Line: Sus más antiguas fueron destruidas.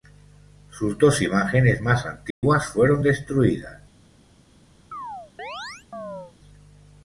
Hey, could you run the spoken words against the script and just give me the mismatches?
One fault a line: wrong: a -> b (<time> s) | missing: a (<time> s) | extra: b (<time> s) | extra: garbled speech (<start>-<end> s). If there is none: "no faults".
extra: dos imágenes (1.0 s)